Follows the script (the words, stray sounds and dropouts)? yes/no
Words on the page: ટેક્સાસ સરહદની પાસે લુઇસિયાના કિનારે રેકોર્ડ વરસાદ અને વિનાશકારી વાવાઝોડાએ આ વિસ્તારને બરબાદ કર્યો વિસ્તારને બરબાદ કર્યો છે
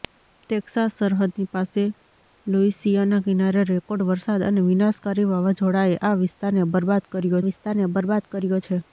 yes